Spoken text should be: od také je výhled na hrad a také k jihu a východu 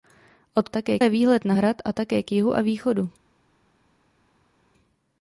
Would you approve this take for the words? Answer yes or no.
yes